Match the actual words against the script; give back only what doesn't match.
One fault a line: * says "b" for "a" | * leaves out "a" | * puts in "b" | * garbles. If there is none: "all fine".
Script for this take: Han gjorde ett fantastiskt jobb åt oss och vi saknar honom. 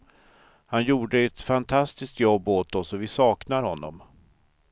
all fine